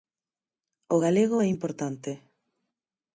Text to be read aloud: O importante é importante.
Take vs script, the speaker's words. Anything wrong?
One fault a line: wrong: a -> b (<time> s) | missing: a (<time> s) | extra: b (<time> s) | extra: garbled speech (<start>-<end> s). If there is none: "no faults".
wrong: importante -> galego (1.0 s)